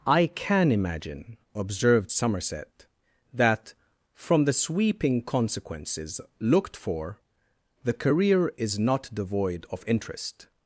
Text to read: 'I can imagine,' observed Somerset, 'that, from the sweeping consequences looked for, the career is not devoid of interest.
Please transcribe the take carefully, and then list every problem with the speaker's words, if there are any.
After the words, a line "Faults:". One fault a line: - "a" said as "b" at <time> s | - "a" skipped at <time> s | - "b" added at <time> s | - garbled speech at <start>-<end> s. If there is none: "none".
'I can imagine,' observed Somerset, 'that, from the sweeping consequences looked for, the career is not devoid of interest.
Faults:
none